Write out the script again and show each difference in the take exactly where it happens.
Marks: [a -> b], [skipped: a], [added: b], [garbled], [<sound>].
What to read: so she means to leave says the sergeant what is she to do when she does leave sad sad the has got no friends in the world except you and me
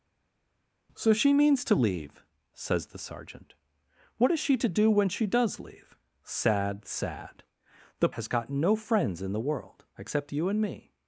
so she means to leave says the sergeant what is she to do when she does leave sad sad the has got no friends in the world except you and me